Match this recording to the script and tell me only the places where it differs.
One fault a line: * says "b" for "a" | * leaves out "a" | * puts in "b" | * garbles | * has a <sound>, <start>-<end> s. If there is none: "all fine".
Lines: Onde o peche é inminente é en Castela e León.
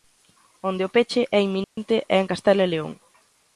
* has a dropout, 1.6-1.8 s